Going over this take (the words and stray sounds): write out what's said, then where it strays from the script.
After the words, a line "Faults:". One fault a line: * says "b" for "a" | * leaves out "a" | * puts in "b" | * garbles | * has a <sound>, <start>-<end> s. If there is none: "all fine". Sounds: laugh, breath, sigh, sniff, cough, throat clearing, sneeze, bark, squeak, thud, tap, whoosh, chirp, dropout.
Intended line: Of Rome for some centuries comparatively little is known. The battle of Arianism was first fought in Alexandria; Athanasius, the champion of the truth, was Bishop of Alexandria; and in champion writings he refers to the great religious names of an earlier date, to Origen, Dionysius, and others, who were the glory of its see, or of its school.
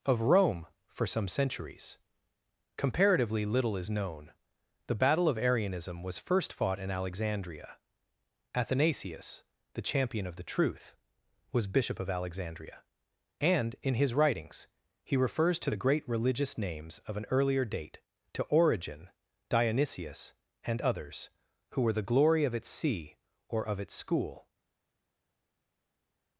Of Rome for some centuries comparatively little is known. The battle of Arianism was first fought in Alexandria; Athanasius, the champion of the truth, was Bishop of Alexandria; and in his writings he refers to the great religious names of an earlier date, to Origen, Dionysius, and others, who were the glory of its see, or of its school.
Faults:
* says "his" for "champion"